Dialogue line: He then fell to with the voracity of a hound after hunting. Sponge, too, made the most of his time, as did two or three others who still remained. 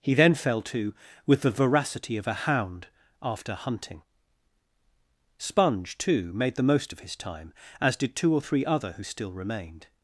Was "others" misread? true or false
true